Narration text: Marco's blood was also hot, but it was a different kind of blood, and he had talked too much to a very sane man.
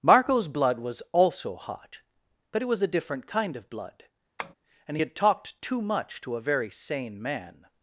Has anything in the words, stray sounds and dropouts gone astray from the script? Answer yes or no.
yes